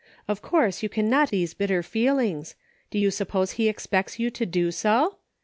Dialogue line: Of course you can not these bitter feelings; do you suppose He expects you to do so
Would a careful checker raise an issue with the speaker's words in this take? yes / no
no